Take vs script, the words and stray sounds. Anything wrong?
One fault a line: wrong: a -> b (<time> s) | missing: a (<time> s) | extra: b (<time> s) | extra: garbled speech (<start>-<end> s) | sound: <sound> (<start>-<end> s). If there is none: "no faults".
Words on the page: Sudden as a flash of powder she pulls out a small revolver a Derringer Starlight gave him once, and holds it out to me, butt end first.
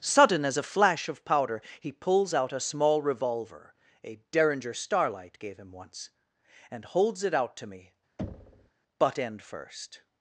wrong: she -> he (1.8 s)
sound: thud (8.2-8.7 s)